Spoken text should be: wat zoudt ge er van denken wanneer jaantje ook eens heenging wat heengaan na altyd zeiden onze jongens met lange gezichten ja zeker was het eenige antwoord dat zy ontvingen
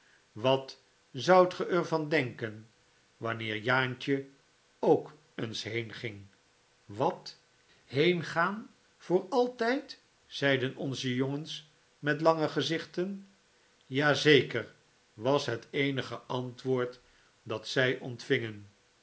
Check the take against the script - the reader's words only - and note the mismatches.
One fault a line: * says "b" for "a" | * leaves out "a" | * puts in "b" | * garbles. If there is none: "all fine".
* says "voor" for "na"